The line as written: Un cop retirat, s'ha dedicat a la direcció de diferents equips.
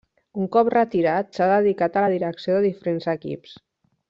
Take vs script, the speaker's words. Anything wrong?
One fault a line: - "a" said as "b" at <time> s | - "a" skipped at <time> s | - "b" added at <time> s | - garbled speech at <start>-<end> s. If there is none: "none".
none